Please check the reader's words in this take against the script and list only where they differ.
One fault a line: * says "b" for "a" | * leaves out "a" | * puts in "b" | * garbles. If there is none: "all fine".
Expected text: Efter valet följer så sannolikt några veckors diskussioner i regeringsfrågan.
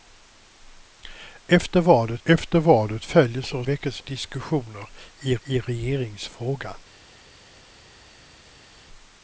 * puts in "efter valet"
* leaves out "sannolikt några"
* puts in "i"